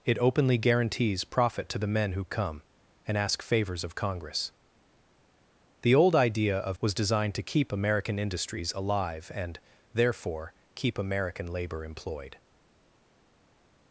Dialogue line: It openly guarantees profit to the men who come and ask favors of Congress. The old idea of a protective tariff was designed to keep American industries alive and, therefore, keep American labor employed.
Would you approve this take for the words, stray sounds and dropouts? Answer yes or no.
no